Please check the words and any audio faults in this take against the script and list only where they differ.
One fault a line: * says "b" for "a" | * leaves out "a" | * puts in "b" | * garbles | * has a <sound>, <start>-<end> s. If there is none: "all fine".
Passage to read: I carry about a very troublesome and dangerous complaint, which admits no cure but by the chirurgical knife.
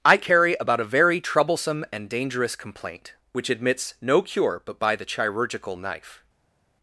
all fine